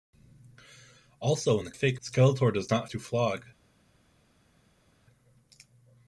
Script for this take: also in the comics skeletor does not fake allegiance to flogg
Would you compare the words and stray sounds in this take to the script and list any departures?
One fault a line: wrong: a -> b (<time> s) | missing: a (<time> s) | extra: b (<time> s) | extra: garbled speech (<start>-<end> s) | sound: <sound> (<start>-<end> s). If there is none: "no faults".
wrong: comics -> fake (1.7 s)
missing: fake allegiance (2.9 s)